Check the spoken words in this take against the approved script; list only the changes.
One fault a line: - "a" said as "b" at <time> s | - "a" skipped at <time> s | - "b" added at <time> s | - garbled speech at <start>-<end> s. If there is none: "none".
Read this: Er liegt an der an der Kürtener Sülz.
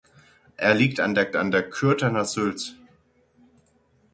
none